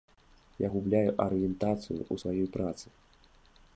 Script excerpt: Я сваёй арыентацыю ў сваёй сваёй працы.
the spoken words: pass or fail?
fail